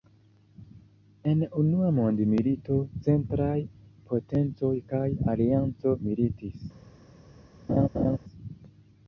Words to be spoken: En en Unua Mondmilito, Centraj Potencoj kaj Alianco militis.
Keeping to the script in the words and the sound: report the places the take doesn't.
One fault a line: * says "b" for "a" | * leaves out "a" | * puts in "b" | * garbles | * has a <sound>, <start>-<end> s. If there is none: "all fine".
* leaves out "en"
* has a laugh, 7.7-8.2 s